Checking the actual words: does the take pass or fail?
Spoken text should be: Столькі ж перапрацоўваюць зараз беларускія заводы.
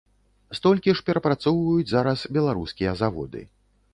pass